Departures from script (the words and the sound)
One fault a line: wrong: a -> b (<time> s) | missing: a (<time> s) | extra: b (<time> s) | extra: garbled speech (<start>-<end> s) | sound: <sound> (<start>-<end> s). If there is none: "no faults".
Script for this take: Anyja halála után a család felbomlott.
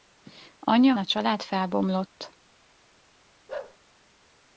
missing: halála után (0.9 s)
sound: bark (3.5-3.8 s)